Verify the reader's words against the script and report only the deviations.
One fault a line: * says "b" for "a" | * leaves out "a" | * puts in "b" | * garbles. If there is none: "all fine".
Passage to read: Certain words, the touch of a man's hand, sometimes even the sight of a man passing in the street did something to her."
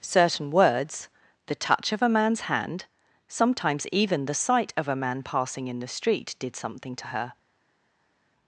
all fine